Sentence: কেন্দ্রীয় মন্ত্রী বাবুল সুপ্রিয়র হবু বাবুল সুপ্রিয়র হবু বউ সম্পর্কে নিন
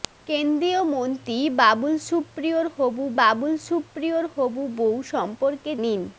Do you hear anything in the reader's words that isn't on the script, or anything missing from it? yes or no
no